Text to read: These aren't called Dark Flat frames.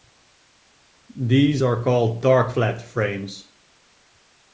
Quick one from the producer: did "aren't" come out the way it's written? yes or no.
no